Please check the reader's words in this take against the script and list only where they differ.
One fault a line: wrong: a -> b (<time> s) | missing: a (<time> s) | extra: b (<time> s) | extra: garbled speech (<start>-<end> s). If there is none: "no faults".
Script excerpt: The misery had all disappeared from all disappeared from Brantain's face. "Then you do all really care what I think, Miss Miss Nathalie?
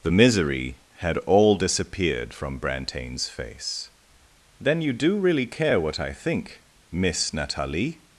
missing: all disappeared from (2.6 s)
missing: all (5.2 s)
missing: Miss (7.3 s)